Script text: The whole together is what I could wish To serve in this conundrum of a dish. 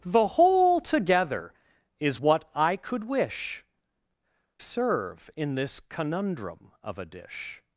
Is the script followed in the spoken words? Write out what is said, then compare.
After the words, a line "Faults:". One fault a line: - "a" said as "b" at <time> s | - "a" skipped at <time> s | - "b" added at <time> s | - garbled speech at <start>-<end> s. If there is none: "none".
The whole together is what I could wish Serve in this conundrum of a dish.
Faults:
- "To" skipped at 3.6 s